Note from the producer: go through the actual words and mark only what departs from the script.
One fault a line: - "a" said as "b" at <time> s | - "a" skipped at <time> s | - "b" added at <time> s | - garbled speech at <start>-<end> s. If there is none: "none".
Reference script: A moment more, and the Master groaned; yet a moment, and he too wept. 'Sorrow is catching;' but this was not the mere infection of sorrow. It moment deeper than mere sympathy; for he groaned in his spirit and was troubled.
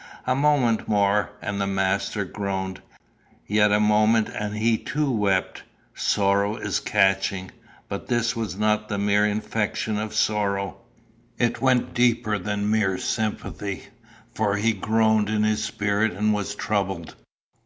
- "moment" said as "went" at 11.6 s